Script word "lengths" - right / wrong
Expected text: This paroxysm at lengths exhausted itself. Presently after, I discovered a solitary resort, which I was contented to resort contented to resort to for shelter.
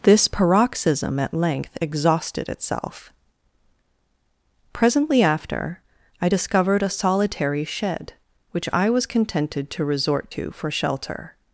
wrong